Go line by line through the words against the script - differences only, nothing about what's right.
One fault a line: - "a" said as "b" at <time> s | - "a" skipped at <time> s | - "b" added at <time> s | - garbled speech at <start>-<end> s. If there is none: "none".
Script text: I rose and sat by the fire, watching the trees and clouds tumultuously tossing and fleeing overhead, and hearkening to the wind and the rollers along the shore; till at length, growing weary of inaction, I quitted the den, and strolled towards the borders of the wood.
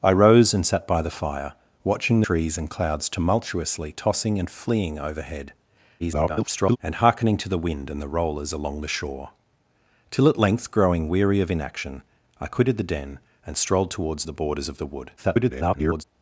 - "the" skipped at 2.2 s
- garbled speech at 6.0-6.8 s
- garbled speech at 15.2-16.0 s